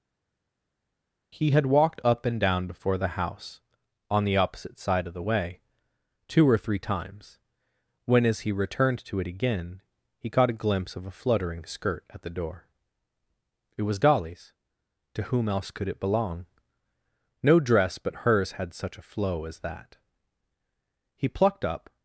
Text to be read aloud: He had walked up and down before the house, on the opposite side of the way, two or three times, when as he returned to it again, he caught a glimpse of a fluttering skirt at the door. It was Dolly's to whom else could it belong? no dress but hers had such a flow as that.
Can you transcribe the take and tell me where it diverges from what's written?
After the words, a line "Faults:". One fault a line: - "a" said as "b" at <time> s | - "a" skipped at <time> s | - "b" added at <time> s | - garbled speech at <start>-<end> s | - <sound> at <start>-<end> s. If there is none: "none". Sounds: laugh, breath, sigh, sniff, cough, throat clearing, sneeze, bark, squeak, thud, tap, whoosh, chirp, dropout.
He had walked up and down before the house, on the opposite side of the way, two or three times, when as he returned to it again, he caught a glimpse of a fluttering skirt at the door. It was Dolly's to whom else could it belong? no dress but hers had such a flow as that. He plucked up
Faults:
- "He plucked up" added at 21.1 s